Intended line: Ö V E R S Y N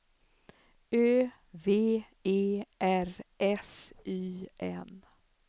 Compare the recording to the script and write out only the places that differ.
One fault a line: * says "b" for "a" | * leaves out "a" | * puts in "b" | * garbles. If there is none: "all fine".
all fine